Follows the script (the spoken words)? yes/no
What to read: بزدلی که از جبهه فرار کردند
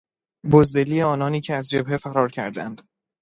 no